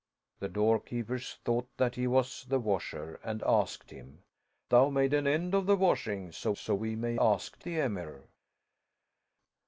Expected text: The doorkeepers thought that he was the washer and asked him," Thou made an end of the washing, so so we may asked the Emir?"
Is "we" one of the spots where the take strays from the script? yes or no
no